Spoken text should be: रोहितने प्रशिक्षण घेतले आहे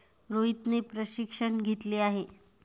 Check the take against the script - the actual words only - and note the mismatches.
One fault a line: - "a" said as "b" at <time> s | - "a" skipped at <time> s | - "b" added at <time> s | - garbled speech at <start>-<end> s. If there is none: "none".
none